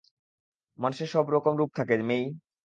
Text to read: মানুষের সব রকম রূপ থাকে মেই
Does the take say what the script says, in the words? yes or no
yes